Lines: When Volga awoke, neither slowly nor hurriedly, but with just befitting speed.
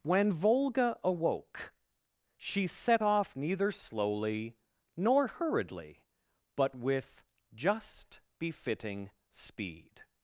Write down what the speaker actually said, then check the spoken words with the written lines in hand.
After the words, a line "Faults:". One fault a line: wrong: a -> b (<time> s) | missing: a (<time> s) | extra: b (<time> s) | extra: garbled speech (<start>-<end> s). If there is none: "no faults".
When Volga awoke, she set off neither slowly nor hurriedly, but with just befitting speed.
Faults:
extra: she set off (2.4 s)